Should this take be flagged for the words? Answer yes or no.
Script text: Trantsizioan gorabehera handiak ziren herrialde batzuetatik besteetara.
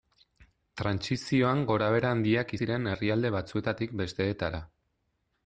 no